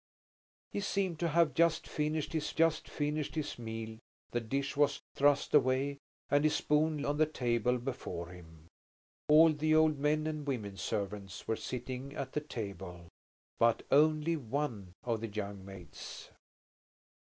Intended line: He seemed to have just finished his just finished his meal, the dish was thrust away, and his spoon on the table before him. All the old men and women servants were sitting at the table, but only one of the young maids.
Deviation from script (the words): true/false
false